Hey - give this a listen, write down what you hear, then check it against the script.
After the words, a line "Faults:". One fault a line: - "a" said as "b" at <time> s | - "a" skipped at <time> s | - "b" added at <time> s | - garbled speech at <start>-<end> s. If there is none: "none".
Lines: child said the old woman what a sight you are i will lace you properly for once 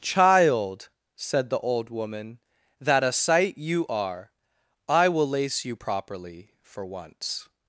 child said the old woman that a sight you are i will lace you properly for once
Faults:
- "what" said as "that" at 2.8 s